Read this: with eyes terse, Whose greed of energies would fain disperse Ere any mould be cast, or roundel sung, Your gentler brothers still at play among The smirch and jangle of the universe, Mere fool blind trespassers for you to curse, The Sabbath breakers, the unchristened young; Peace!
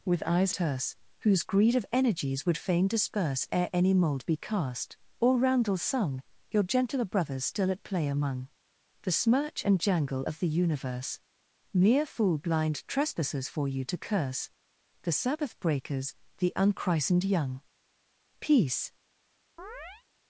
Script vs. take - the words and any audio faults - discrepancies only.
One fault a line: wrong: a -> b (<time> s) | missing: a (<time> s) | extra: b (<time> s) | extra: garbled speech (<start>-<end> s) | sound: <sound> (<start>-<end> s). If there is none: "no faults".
sound: chirp (19.6-20.0 s)